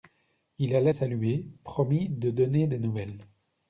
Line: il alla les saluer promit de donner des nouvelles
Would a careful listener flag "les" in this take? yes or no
yes